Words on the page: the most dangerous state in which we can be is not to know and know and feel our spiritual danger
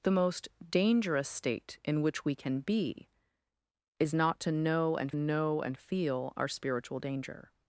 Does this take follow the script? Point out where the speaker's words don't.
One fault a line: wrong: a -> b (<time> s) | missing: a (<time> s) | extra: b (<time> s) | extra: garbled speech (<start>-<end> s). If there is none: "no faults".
no faults